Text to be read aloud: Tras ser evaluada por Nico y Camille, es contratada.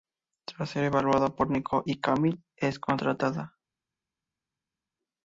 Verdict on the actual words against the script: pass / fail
pass